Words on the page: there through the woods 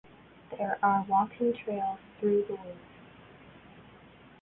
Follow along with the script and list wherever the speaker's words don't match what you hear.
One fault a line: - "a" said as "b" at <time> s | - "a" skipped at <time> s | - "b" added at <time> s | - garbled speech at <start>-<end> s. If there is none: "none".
- "are walking trails" added at 0.8 s